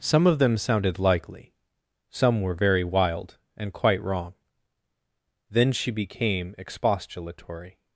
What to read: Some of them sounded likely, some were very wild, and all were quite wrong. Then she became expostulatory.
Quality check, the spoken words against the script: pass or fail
fail